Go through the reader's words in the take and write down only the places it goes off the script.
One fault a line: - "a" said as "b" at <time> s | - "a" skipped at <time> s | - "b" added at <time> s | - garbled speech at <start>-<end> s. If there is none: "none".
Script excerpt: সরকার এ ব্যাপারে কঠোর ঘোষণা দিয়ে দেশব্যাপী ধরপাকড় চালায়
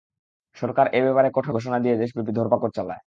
none